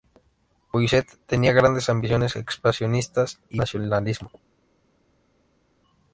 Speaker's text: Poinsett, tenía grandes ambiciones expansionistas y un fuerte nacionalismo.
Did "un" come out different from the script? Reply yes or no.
yes